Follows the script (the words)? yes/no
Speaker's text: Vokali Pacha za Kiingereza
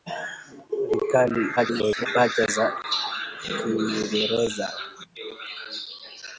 no